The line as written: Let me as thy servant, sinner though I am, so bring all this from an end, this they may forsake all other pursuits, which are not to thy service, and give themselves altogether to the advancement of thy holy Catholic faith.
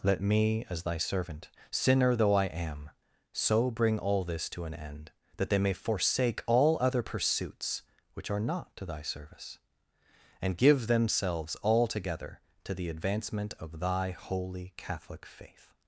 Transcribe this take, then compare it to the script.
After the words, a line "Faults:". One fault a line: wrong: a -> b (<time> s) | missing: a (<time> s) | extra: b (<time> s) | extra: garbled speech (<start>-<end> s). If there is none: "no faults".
Let me as thy servant, sinner though I am, so bring all this to an end, that they may forsake all other pursuits, which are not to thy service, and give themselves altogether to the advancement of thy holy Catholic faith.
Faults:
wrong: from -> to (4.5 s)
wrong: this -> that (5.4 s)